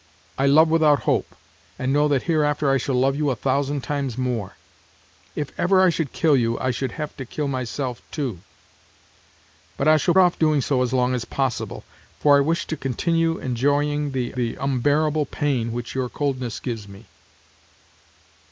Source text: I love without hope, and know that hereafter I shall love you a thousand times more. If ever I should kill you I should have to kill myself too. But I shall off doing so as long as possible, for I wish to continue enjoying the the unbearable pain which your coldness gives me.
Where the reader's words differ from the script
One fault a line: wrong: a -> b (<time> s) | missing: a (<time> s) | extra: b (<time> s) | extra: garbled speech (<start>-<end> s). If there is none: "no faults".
no faults